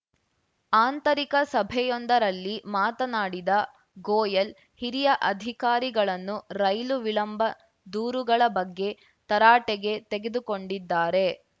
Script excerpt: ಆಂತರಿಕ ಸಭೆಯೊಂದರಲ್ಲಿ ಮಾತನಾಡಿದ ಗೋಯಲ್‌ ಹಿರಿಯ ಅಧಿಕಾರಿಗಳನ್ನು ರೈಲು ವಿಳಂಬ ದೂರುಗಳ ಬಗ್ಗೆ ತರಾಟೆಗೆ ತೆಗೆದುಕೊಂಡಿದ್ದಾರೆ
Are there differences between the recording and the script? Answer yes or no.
no